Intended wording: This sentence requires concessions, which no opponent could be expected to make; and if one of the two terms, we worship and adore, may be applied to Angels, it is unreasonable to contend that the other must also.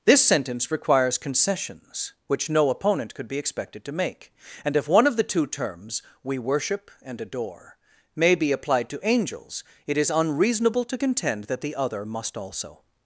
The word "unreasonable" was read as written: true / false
true